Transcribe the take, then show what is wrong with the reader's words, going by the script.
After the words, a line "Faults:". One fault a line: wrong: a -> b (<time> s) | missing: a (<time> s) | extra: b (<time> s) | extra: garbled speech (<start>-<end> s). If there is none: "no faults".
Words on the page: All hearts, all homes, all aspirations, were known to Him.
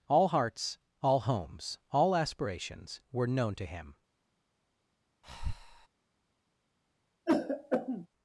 All hearts, all homes, all aspirations, were known to Him.
Faults:
no faults